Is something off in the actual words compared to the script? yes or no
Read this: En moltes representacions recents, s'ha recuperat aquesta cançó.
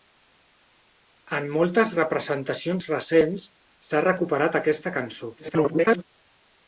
yes